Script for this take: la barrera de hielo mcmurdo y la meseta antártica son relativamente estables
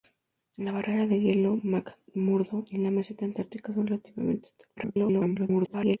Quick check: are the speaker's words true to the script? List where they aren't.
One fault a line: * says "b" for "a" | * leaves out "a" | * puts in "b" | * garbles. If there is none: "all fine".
* garbles